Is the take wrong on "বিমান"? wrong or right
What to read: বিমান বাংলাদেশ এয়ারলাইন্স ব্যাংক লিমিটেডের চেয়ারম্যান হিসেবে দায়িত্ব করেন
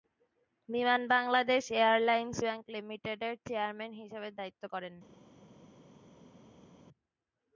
right